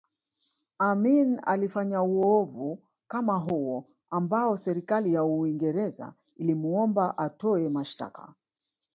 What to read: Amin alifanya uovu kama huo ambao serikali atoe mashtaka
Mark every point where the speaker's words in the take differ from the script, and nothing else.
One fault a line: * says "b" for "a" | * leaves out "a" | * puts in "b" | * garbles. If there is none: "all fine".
* puts in "ya Uingereza ilimuomba"